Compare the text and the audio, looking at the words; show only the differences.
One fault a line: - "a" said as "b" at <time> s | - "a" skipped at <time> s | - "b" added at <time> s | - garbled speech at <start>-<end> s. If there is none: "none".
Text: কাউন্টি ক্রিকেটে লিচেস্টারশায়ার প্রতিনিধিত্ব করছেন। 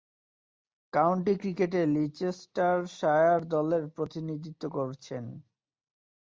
- "দলের" added at 3.5 s